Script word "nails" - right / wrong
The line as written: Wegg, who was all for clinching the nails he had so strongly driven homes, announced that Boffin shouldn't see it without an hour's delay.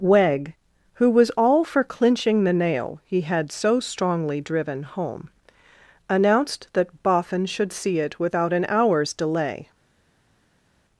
wrong